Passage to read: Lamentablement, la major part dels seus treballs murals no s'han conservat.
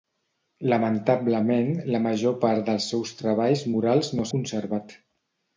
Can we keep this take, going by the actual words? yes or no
no